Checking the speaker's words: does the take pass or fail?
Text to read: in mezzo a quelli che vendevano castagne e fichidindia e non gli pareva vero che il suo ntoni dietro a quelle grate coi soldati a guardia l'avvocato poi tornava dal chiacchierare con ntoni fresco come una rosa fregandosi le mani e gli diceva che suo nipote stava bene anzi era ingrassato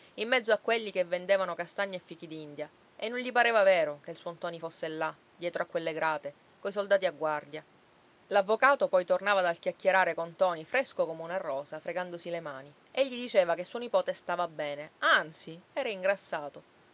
fail